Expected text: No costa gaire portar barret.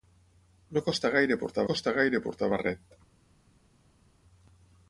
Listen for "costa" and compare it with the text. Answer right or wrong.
right